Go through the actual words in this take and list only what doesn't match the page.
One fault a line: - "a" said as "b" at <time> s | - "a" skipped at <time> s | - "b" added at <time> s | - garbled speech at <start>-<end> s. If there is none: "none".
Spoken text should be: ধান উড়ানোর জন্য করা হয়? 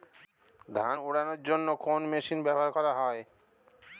- "কোন মেশিন ব্যবহার" added at 1.8 s